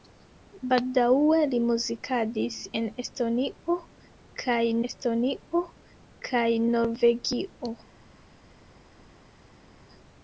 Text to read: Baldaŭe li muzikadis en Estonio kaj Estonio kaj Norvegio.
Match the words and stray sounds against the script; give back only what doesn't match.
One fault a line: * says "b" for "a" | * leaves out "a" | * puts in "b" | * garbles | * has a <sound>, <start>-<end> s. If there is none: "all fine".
all fine